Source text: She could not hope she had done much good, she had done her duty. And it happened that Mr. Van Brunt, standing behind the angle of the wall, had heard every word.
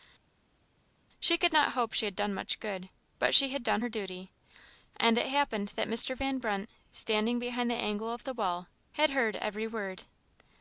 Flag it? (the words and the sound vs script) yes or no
yes